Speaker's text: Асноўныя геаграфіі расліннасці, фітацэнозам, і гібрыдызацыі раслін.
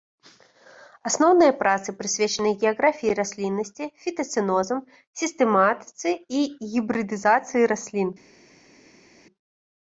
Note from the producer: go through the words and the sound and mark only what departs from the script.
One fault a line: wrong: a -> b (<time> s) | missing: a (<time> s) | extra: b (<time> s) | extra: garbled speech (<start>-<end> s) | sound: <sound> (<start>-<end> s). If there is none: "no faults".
extra: працы прысвечаны (1.6 s)
extra: сістэматыцы (5.2 s)